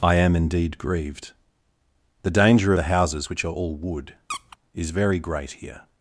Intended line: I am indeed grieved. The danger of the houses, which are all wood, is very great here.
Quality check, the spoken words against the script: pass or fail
fail